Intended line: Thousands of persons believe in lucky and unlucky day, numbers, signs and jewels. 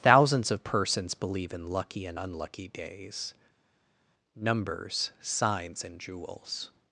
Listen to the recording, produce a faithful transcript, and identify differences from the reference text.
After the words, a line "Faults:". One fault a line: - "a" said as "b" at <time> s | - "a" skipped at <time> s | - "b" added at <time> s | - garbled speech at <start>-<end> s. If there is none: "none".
Thousands of persons believe in lucky and unlucky days, numbers, signs and jewels.
Faults:
- "day" said as "days" at 2.7 s